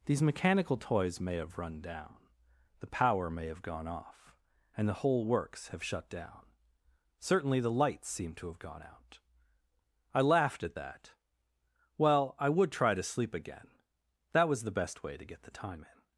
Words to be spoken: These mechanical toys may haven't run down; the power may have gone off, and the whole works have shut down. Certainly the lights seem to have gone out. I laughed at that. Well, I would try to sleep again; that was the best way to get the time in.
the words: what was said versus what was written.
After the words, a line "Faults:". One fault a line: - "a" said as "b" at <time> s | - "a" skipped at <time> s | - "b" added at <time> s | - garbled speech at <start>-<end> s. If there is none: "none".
These mechanical toys may have run down; the power may have gone off, and the whole works have shut down. Certainly the lights seem to have gone out. I laughed at that. Well, I would try to sleep again; that was the best way to get the time in.
Faults:
- "haven't" said as "have" at 1.4 s